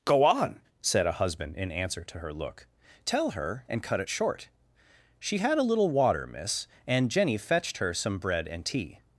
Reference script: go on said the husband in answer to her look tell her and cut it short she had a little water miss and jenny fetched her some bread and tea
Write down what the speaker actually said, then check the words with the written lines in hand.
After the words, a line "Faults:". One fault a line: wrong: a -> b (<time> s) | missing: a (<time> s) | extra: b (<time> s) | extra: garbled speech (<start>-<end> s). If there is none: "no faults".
go on said a husband in answer to her look tell her and cut it short she had a little water miss and jenny fetched her some bread and tea
Faults:
wrong: the -> a (1.1 s)